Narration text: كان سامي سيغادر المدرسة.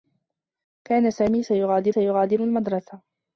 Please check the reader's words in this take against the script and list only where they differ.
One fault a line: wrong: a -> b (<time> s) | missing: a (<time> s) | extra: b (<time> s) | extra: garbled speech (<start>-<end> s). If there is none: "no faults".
extra: سيغادر (1.9 s)